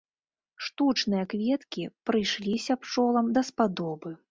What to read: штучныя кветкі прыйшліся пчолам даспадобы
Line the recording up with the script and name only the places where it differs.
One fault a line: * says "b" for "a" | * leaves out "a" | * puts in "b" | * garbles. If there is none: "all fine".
all fine